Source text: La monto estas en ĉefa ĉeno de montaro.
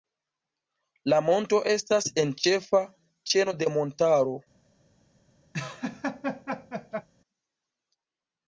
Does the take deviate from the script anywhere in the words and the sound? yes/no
yes